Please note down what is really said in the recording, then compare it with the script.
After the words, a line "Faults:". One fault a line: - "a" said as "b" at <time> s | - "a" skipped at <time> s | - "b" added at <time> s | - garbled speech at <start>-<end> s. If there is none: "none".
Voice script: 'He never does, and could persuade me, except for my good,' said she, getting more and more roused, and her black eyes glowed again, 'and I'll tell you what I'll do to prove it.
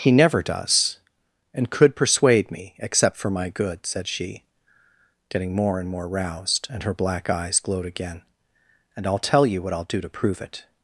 'He never does, and could persuade me, except for my good,' said she, getting more and more roused, and her black eyes glowed again, 'and I'll tell you what I'll do to prove it.
Faults:
none